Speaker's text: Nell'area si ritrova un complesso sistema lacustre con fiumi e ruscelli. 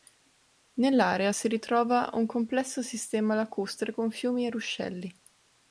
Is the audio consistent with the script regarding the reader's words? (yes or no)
yes